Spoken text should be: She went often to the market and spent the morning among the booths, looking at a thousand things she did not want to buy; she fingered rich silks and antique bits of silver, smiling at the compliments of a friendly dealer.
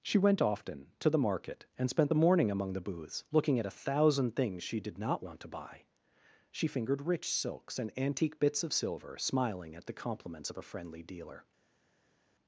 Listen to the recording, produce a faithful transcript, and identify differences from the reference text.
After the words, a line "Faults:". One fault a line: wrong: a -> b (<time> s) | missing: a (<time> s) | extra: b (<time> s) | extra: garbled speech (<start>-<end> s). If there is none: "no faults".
She went often to the market and spent the morning among the booths, looking at a thousand things she did not want to buy; she fingered rich silks and antique bits of silver, smiling at the compliments of a friendly dealer.
Faults:
no faults